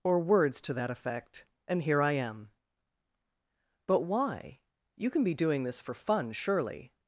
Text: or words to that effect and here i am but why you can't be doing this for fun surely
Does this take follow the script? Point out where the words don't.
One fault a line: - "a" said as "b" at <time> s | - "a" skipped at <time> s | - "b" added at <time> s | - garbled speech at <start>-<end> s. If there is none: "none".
- "can't" said as "can" at 5.1 s